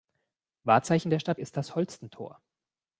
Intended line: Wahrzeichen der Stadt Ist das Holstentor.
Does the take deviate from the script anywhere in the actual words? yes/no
no